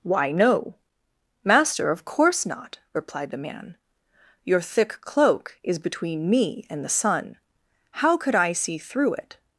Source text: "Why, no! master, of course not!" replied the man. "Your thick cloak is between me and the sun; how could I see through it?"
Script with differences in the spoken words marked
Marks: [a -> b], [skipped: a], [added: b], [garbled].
"Why, no! master, of course not!" replied the man. "Your thick cloak is between me and the sun; how could I see through it?"